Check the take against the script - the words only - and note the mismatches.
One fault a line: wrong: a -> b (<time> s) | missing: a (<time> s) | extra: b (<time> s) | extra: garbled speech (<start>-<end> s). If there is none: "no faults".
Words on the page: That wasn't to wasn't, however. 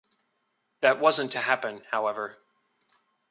wrong: wasn't -> happen (1.4 s)